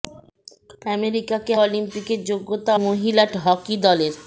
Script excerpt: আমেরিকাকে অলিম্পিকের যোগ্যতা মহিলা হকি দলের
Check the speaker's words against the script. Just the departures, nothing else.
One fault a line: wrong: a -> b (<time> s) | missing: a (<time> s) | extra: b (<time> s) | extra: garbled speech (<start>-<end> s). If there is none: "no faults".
no faults